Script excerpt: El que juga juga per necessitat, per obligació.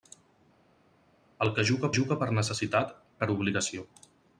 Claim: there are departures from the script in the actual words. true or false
false